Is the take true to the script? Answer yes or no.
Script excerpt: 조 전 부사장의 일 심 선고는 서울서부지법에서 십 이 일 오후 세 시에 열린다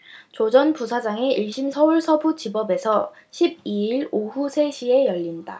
no